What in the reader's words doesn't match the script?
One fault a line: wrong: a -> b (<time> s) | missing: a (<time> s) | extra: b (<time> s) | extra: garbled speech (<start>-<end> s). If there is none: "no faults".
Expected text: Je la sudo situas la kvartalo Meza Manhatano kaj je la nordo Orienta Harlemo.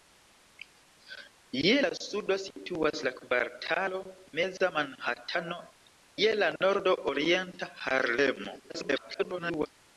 missing: kaj (5.6 s)
extra: garbled speech (8.7-9.7 s)